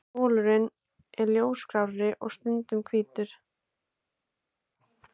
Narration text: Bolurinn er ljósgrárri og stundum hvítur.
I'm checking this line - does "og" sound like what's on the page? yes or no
yes